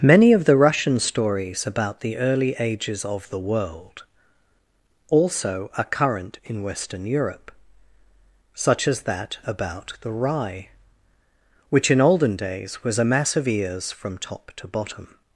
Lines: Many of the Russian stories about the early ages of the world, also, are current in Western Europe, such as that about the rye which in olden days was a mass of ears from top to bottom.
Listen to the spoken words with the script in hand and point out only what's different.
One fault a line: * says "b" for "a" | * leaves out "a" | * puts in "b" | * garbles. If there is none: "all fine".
all fine